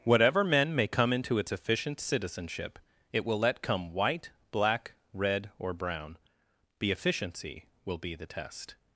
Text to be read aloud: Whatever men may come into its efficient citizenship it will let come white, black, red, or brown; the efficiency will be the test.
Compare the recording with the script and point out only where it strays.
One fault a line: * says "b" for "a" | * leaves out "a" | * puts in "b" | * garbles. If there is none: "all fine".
all fine